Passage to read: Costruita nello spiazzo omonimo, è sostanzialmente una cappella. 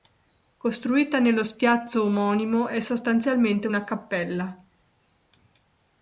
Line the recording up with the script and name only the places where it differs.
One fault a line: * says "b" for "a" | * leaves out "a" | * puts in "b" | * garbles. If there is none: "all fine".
all fine